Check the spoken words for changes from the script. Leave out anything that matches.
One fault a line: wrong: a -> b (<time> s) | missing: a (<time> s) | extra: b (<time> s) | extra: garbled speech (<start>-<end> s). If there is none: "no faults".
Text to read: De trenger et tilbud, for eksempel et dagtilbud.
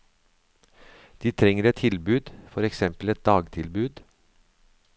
no faults